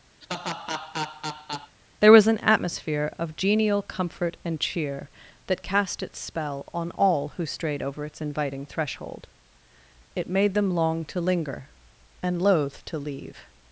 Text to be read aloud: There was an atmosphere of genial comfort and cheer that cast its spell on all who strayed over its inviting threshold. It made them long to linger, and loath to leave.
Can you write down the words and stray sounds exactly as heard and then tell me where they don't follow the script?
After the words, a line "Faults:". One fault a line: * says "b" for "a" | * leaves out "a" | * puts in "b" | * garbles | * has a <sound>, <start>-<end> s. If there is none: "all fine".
There was an atmosphere of genial comfort and cheer that cast its spell on all who strayed over its inviting threshold. It made them long to linger, and loath to leave.
Faults:
* has a laugh, 0.2-1.8 s